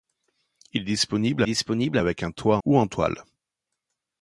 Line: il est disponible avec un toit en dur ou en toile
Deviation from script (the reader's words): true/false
true